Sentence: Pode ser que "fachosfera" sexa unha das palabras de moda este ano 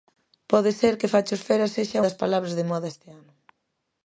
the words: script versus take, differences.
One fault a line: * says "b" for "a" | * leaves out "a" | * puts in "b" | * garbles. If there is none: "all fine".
* leaves out "unha"